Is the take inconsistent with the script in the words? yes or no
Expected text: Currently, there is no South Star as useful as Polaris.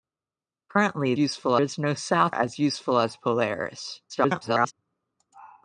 yes